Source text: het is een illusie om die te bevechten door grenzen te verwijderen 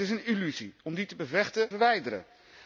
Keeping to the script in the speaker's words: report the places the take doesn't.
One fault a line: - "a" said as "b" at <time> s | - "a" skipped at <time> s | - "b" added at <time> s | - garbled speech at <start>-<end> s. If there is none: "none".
- "door grenzen te" skipped at 1.7 s